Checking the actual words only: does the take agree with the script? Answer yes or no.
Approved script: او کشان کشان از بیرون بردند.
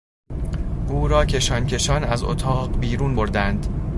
no